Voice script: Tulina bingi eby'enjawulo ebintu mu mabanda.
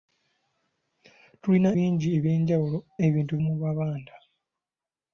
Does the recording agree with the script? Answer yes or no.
yes